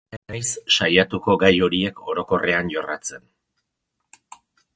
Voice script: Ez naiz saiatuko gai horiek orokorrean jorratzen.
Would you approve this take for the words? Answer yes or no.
no